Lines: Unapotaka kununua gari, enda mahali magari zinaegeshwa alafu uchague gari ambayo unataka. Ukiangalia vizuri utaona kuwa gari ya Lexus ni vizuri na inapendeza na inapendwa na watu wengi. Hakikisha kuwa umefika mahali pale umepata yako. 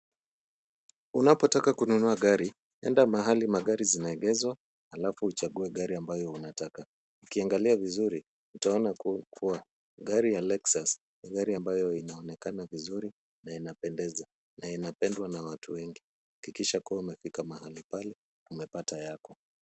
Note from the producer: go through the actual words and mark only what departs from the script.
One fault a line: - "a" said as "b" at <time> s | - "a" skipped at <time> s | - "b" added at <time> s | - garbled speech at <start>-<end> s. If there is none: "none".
- "gari ambayo inaonekana" added at 11.3 s